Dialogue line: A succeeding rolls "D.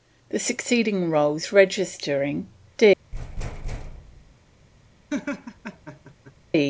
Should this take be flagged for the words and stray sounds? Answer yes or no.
yes